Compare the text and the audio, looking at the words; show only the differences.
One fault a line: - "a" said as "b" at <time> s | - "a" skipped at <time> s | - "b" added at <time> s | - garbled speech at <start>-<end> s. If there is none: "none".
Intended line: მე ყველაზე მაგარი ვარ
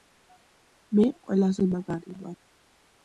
none